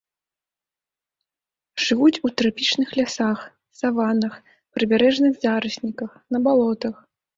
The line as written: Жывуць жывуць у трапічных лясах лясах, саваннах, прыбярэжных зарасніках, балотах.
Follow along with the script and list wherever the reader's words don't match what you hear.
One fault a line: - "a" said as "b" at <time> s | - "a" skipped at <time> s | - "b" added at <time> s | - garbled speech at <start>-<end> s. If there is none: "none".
- "жывуць" skipped at 2.2 s
- "лясах" skipped at 3.4 s
- "на" added at 6.3 s